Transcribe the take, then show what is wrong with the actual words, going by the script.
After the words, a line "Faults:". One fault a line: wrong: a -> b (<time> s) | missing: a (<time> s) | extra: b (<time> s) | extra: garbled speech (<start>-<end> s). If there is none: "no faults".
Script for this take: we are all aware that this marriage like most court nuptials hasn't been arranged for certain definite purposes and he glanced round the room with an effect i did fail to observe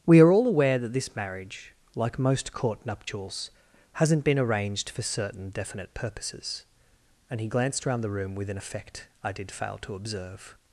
we are all aware that this marriage like most court nuptials hasn't been arranged for certain definite purposes and he glanced round the room with an effect i did fail to observe
Faults:
no faults